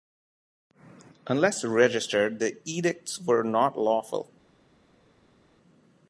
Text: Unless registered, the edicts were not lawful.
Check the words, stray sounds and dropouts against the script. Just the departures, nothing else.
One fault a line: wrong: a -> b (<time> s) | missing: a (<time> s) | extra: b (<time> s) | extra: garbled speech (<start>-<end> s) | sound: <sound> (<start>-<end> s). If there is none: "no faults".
no faults